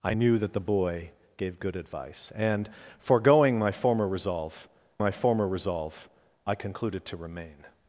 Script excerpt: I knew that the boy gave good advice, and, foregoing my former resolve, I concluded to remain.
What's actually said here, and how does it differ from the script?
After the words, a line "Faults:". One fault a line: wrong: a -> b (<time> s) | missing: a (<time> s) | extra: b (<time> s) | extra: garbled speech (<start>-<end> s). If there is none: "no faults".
I knew that the boy gave good advice, and, foregoing my former resolve my former resolve, I concluded to remain.
Faults:
extra: my former resolve (5.0 s)